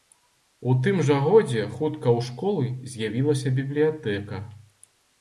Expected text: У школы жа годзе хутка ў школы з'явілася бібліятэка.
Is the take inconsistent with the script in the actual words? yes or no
yes